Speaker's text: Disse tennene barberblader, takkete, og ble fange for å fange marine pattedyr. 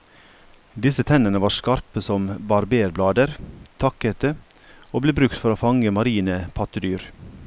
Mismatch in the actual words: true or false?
true